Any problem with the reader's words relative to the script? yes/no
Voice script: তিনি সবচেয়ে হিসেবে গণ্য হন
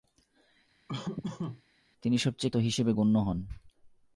no